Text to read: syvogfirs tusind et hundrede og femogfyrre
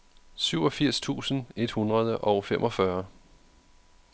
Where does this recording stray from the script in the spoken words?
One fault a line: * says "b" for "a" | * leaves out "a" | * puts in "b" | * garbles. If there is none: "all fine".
all fine